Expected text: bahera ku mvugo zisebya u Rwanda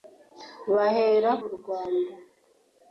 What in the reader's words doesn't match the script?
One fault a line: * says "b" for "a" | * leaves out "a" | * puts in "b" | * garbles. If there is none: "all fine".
* leaves out "ku mvugo zisebya"